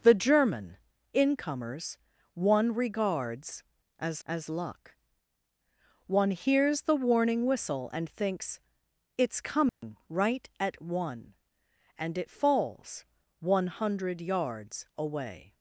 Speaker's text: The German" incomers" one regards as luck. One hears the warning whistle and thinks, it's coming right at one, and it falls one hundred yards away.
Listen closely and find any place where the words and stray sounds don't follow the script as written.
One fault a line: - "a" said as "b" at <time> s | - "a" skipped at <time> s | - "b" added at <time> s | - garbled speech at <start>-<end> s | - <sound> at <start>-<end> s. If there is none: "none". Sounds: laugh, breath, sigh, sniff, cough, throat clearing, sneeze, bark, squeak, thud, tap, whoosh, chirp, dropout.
- "as" added at 4.3 s
- dropout at 9.7-9.8 s